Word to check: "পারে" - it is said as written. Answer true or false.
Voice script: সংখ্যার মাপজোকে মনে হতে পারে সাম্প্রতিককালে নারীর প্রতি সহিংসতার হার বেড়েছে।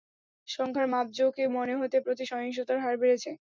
false